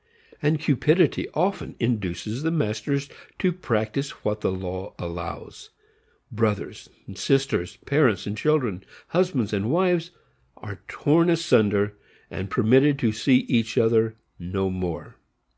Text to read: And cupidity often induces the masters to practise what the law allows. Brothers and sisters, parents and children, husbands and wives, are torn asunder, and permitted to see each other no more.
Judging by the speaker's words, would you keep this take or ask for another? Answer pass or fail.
pass